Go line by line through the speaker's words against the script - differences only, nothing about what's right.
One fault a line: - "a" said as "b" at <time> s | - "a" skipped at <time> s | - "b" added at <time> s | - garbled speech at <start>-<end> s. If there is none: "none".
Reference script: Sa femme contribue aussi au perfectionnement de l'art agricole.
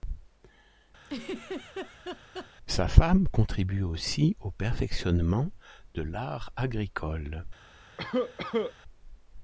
none